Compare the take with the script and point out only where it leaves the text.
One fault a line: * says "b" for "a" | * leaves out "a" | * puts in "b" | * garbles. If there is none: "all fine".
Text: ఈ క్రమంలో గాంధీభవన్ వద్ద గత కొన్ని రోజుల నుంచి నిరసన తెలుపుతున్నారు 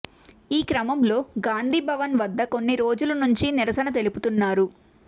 * leaves out "గత"